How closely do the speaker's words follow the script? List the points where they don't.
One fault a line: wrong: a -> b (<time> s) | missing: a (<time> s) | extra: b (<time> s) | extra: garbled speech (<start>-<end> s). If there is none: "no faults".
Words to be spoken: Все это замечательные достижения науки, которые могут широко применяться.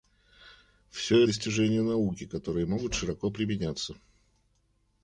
missing: это замечательные (1.2 s)